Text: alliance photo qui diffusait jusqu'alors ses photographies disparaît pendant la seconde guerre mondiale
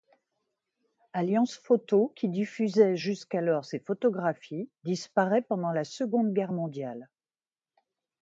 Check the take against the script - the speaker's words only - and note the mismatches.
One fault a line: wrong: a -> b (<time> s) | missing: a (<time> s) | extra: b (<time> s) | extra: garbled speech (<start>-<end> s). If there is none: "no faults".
no faults